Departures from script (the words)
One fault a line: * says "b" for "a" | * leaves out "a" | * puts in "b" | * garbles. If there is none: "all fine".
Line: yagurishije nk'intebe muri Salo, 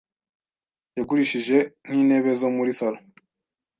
* puts in "zo"